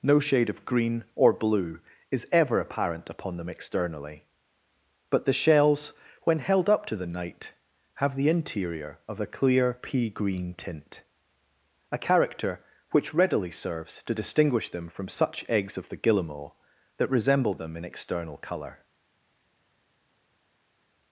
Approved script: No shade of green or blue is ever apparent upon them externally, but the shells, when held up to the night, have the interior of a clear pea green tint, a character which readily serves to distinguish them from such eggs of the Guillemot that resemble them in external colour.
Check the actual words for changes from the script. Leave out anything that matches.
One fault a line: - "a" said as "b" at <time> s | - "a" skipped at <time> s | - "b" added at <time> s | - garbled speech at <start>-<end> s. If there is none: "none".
none